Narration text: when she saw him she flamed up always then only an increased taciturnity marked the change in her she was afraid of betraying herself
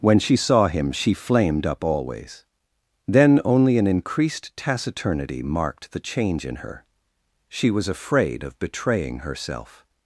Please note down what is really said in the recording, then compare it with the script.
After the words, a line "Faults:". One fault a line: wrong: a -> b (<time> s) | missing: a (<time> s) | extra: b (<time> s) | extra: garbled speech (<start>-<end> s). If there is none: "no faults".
when she saw him she flamed up always then only an increased taciturnity marked the change in her she was afraid of betraying herself
Faults:
no faults